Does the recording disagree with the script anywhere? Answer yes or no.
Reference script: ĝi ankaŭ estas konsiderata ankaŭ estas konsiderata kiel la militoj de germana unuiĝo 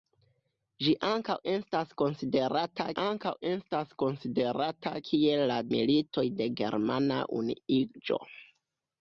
no